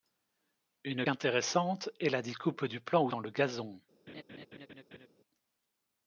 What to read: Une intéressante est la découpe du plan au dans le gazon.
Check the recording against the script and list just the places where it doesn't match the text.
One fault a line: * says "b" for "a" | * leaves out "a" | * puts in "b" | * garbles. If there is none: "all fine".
all fine